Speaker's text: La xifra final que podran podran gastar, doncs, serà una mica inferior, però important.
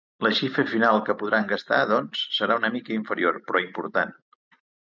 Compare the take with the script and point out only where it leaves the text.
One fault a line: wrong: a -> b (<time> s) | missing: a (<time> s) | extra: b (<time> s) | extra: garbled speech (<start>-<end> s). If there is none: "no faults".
missing: podran (1.5 s)